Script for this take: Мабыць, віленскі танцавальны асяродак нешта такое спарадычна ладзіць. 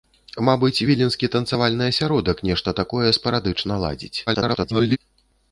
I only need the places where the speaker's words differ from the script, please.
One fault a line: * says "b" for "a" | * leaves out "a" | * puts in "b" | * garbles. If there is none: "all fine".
* garbles